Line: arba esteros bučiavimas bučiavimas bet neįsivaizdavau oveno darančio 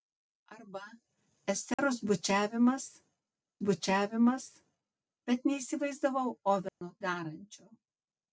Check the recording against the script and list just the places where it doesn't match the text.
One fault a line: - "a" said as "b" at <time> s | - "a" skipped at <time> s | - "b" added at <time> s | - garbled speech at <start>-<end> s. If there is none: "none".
none